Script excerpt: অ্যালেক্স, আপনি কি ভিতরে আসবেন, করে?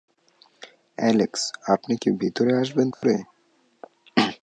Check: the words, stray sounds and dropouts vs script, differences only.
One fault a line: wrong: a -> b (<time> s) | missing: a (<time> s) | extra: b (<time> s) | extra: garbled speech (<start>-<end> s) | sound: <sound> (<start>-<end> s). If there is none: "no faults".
sound: dropout (2.9-3.0 s)